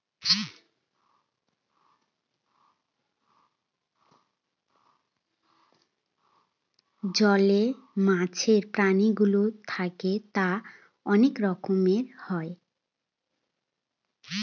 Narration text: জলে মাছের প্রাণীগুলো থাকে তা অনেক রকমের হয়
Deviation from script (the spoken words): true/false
false